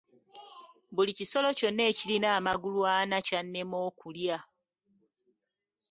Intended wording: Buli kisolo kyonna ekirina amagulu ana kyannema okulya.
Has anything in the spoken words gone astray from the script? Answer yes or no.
no